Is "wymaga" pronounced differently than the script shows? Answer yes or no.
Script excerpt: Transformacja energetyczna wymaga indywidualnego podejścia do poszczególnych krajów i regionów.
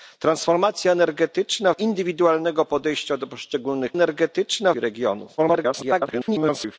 yes